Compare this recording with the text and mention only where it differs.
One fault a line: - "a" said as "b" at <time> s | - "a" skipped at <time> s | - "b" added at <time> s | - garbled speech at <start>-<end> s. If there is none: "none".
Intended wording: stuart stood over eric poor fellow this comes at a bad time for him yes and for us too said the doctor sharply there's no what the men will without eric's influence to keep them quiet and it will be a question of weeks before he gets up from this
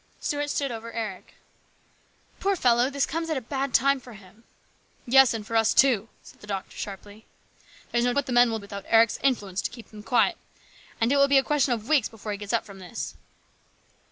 none